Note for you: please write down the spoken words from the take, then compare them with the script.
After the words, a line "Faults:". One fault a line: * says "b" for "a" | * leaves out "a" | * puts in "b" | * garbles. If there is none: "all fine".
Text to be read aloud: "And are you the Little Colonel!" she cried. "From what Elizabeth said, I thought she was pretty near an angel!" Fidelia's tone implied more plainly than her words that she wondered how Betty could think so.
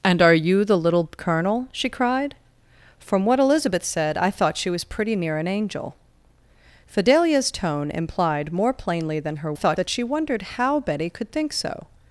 "And are you the Little Colonel!" she cried. "From what Elizabeth said, I thought she was pretty near an angel!" Fidelia's tone implied more plainly than her thought that she wondered how Betty could think so.
Faults:
* says "thought" for "words"